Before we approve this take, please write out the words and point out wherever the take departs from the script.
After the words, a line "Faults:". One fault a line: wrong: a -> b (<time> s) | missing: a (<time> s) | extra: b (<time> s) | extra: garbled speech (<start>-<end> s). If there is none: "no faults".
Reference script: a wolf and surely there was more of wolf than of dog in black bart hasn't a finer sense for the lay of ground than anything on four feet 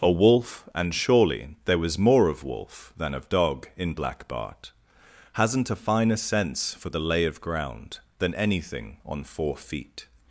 a wolf and surely there was more of wolf than of dog in black bart hasn't a finer sense for the lay of ground than anything on four feet
Faults:
no faults